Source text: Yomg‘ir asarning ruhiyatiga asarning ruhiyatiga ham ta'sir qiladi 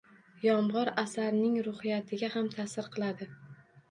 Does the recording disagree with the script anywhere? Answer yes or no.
yes